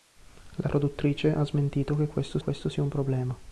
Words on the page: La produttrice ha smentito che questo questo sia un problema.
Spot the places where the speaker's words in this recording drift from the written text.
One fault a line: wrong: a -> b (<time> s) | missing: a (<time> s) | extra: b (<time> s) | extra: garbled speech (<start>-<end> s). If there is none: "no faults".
no faults